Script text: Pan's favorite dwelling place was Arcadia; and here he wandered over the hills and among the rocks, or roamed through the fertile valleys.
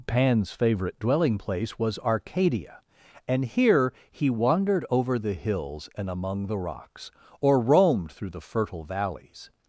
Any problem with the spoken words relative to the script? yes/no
no